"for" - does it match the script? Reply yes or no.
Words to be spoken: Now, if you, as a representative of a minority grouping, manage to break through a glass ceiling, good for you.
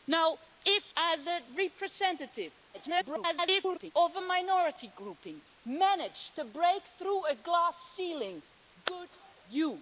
no